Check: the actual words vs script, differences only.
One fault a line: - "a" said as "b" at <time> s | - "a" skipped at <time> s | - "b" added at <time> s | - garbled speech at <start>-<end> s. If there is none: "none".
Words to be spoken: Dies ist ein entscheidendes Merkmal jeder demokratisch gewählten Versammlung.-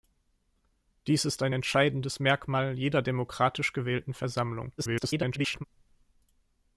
- garbled speech at 4.8-5.6 s